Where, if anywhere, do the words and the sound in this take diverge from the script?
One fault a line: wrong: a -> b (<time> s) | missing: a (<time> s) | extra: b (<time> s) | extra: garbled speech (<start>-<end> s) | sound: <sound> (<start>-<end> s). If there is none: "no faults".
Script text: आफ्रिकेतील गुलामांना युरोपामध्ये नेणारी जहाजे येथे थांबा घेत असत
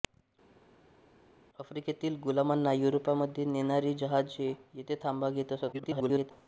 extra: garbled speech (5.7-6.3 s)